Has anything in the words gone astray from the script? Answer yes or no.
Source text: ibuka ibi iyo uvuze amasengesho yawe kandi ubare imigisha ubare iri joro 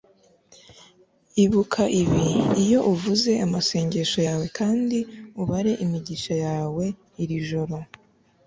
yes